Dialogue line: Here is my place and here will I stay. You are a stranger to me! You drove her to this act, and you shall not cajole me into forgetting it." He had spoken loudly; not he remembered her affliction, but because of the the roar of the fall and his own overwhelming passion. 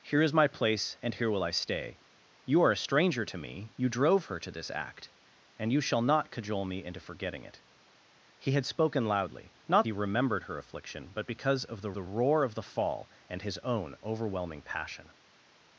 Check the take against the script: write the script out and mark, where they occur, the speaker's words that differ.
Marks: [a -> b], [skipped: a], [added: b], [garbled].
Here is my place and here will I stay. You are a stranger to me! You drove her to this act, and you shall not cajole me into forgetting it." He had spoken loudly; not he remembered her affliction, but because of the the roar of the fall and his own overwhelming passion.